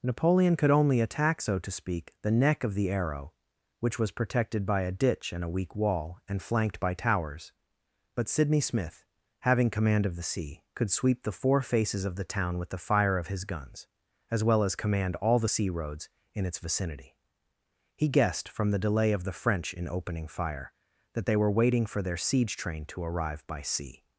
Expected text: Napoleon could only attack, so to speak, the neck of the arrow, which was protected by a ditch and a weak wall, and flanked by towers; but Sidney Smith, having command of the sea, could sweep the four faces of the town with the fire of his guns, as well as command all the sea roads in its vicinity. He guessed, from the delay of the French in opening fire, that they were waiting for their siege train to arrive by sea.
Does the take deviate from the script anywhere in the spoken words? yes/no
no